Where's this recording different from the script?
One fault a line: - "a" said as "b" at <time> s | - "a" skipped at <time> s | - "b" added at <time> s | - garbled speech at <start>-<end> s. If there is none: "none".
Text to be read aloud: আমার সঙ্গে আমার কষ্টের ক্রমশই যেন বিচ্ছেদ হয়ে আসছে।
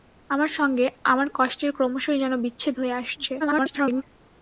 - garbled speech at 3.4-4.0 s